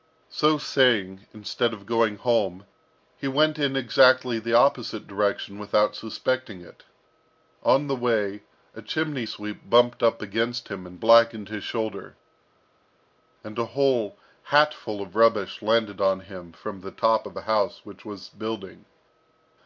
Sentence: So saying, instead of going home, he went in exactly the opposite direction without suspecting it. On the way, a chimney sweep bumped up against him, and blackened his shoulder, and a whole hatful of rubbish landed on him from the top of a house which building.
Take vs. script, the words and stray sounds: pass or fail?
fail